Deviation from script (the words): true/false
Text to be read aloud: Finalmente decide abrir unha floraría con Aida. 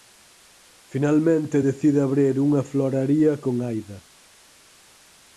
false